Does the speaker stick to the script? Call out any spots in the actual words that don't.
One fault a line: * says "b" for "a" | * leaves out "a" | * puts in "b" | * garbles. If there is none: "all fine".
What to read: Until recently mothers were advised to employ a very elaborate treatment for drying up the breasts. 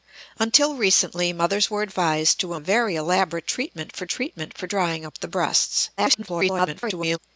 * leaves out "employ"
* puts in "treatment for"
* garbles